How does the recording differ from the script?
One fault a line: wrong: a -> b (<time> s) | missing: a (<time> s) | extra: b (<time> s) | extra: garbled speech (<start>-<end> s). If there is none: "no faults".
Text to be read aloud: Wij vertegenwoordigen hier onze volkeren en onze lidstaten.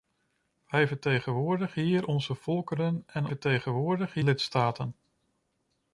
wrong: onze -> vertegenwoordigen (3.3 s)